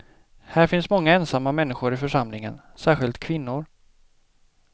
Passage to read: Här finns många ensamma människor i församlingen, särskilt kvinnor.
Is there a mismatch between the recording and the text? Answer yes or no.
no